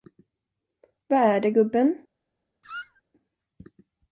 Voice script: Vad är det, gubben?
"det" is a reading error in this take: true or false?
false